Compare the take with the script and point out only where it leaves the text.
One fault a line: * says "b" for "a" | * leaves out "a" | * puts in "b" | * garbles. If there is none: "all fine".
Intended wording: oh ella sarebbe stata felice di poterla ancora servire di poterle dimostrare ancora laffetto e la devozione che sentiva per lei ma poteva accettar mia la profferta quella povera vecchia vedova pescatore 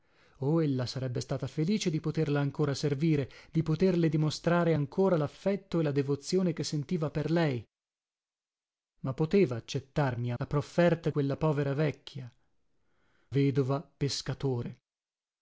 all fine